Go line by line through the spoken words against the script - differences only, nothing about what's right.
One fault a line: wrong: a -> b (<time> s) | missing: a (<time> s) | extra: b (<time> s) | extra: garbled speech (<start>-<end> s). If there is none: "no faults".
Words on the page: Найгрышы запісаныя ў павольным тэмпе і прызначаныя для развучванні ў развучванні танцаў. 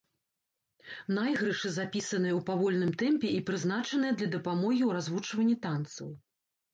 wrong: развучванні -> дапамогі (4.4 s)